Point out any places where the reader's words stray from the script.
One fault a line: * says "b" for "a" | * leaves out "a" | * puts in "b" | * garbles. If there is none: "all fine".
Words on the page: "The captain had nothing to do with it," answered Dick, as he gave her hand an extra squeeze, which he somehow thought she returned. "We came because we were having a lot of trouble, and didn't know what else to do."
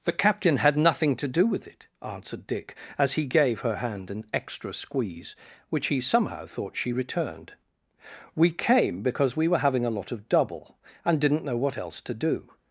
* says "double" for "trouble"